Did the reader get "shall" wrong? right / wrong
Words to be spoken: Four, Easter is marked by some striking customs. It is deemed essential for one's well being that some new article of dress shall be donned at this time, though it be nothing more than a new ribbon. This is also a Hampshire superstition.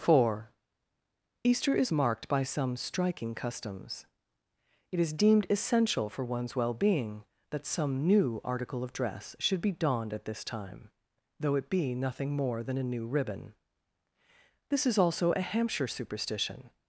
wrong